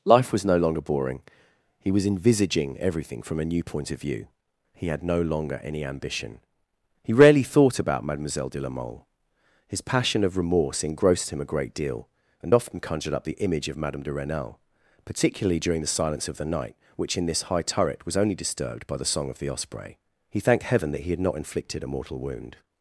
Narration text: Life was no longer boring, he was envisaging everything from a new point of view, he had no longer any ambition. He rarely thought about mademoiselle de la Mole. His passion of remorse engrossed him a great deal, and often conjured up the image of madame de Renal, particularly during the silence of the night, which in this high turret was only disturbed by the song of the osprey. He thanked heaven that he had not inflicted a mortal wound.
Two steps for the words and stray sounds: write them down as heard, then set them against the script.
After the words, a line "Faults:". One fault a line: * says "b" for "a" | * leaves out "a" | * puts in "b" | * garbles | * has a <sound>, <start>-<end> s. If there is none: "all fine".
Life was no longer boring, he was envisaging everything from a new point of view, he had no longer any ambition. He rarely thought about mademoiselle de la Mole. His passion of remorse engrossed him a great deal, and often conjured up the image of madame de Renal, particularly during the silence of the night, which in this high turret was only disturbed by the song of the osprey. He thanked heaven that he had not inflicted a mortal wound.
Faults:
all fine